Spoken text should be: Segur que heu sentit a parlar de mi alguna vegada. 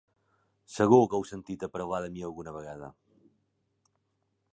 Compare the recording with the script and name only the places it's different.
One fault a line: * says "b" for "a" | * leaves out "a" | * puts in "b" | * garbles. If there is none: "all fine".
all fine